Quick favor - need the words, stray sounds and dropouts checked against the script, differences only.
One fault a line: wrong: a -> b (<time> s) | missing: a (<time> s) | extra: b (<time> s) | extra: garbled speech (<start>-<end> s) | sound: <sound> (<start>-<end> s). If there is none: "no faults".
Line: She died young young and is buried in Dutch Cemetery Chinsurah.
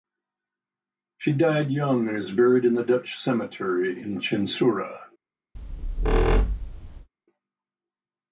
missing: young (2.1 s)
extra: the (2.7 s)
extra: in (4.0 s)
sound: squeak (5.5-7.1 s)